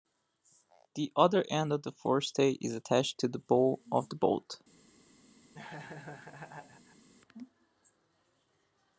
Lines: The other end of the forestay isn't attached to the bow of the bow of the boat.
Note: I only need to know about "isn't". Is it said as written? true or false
false